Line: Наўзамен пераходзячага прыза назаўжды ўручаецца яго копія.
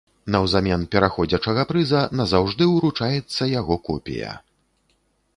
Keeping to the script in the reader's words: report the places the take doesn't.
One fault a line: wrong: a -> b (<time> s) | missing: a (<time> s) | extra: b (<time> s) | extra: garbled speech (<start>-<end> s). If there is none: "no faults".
no faults